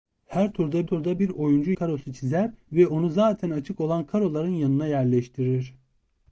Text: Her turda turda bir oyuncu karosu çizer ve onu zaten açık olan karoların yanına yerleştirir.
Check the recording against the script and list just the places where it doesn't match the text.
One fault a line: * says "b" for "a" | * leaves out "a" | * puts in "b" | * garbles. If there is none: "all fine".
all fine